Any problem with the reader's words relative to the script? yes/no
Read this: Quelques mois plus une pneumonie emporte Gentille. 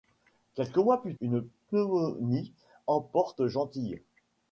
no